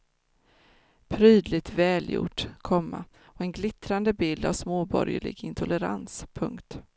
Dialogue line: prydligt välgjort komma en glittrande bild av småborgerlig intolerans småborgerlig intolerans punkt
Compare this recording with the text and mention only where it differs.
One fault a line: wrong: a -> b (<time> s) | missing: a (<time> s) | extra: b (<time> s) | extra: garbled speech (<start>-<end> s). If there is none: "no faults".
extra: och (3.2 s)
missing: småborgerlig intolerans (6.3 s)